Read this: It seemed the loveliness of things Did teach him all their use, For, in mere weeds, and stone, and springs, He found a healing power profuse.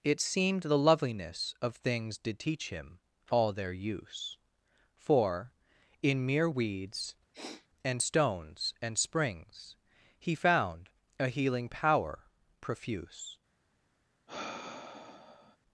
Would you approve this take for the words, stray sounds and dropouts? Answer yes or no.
no